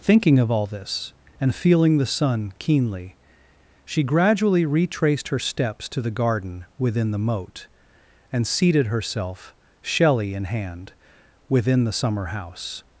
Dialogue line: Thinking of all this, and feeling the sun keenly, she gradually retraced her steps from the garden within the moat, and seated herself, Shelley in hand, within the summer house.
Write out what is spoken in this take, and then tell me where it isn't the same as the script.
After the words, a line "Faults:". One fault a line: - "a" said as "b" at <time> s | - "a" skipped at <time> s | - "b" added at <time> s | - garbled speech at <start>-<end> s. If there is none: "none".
Thinking of all this, and feeling the sun keenly, she gradually retraced her steps to the garden within the moat, and seated herself, Shelley in hand, within the summer house.
Faults:
- "from" said as "to" at 5.9 s